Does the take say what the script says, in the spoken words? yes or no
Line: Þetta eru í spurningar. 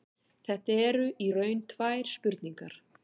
no